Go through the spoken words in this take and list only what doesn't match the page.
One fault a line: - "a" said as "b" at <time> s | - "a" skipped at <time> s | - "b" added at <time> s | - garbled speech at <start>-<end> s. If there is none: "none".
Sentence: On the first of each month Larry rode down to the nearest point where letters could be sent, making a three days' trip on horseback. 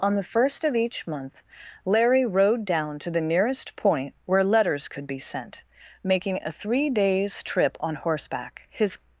- "His" added at 8.7 s